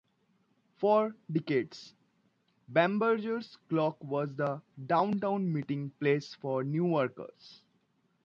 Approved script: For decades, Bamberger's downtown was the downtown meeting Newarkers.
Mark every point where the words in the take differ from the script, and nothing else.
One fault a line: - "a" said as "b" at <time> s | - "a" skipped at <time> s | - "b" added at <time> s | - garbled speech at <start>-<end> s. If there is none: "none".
- "downtown" said as "clock" at 3.7 s
- "place for" added at 5.9 s